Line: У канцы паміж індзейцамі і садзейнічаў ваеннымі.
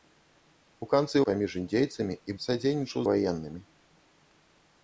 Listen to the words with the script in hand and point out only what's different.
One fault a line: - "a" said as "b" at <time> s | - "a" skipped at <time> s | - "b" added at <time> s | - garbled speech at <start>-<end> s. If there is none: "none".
none